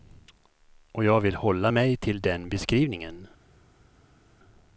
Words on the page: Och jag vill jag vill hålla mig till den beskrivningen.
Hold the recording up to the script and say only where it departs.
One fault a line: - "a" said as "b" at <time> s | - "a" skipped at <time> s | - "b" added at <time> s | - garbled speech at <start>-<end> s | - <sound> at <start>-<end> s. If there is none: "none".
- "jag vill" skipped at 1.4 s